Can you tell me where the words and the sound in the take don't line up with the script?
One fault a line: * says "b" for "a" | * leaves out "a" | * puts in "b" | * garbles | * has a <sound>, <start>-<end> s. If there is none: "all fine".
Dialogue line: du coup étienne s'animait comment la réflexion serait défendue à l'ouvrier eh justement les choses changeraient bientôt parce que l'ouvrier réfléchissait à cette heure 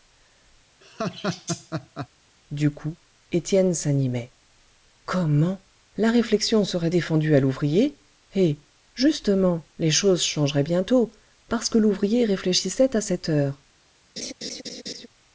* has a laugh, 0.8-2.1 s
* has a laugh, 14.2-15.1 s